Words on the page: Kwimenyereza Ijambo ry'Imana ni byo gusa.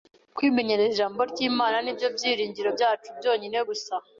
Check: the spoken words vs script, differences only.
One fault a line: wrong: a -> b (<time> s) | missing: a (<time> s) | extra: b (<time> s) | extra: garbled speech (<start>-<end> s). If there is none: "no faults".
extra: byiringiro byacu byonyine (2.1 s)